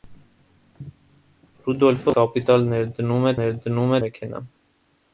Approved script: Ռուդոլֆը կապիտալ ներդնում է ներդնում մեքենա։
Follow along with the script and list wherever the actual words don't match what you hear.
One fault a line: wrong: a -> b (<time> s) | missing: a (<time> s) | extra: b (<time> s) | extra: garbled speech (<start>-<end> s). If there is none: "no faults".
no faults